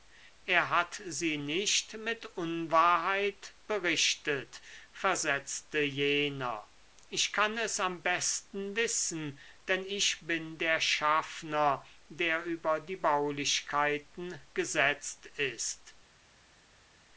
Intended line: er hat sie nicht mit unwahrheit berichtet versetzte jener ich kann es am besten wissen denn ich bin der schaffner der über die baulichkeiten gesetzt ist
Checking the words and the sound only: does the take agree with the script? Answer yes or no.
yes